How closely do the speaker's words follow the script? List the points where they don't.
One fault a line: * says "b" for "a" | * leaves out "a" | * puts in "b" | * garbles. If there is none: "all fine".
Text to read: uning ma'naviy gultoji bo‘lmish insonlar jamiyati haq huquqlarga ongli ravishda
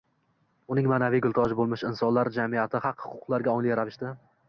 all fine